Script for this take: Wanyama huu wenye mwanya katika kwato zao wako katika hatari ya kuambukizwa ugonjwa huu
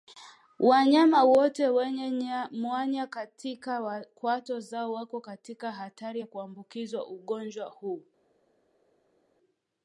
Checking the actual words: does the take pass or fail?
fail